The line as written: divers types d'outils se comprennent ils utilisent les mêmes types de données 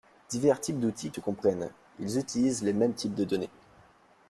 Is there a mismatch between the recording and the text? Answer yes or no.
no